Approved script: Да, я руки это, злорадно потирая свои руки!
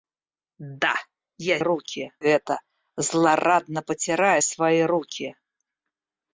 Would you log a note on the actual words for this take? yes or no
no